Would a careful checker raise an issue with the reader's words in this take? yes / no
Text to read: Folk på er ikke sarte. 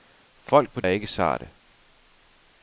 no